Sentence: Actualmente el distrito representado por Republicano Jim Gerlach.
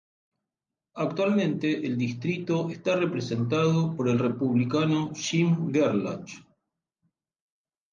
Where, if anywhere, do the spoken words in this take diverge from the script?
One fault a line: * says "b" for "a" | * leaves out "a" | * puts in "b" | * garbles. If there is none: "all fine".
* puts in "está"
* puts in "el"